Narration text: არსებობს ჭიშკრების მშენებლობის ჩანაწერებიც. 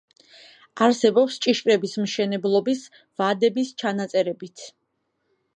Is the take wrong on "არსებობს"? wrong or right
right